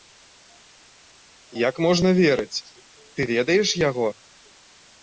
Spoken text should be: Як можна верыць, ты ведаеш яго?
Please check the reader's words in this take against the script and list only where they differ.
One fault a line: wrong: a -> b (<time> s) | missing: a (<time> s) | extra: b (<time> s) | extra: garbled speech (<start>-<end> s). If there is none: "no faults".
no faults